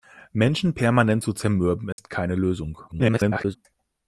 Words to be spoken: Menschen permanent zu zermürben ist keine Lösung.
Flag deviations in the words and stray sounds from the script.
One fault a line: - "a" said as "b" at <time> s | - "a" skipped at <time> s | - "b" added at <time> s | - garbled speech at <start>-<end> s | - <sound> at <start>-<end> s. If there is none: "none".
- dropout at 1.9-2.0 s
- garbled speech at 2.9-3.6 s